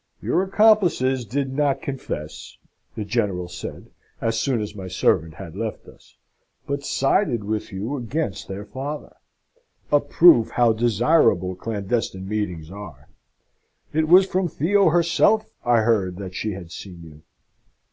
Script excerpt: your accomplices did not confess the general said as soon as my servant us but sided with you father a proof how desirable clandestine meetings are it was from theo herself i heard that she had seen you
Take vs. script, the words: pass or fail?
fail